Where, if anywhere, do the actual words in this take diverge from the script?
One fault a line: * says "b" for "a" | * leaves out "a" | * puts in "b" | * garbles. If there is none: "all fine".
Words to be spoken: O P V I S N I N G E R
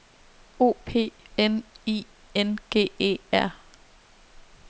* leaves out "V I S"